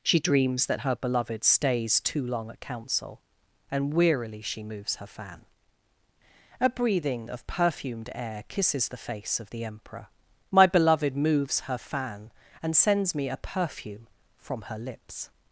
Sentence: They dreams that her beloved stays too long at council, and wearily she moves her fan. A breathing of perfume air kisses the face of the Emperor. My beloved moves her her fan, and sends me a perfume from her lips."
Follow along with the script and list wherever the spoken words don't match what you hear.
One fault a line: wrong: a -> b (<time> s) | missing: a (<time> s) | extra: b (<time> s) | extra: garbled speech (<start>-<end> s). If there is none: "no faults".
wrong: They -> She (0.0 s)
wrong: perfume -> perfumed (7.5 s)
missing: her (11.8 s)